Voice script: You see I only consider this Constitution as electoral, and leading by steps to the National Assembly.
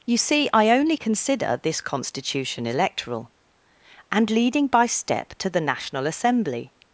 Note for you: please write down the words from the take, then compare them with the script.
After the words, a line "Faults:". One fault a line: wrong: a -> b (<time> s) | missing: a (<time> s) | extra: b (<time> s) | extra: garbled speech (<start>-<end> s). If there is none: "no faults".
You see I only consider this Constitution electoral, and leading by step to the National Assembly.
Faults:
missing: as (2.7 s)
wrong: steps -> step (4.9 s)